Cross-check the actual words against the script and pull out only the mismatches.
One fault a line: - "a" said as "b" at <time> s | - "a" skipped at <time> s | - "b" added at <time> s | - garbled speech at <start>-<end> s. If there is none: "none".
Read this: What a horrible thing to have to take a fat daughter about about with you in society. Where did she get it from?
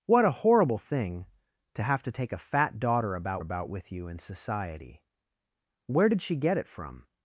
none